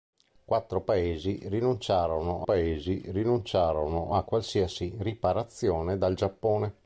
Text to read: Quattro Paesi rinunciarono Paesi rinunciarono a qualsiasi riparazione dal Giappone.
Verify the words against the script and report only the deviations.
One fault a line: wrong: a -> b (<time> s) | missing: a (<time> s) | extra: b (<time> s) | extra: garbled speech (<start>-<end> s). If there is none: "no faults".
no faults